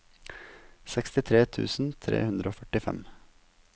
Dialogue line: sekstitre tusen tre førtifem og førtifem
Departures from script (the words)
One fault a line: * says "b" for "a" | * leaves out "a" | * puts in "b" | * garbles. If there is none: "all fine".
* says "hundre" for "førtifem"